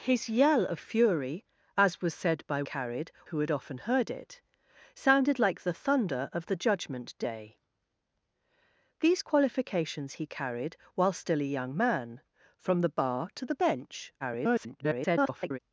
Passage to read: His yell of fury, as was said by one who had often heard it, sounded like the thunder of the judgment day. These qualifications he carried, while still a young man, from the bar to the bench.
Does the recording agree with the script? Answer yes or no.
no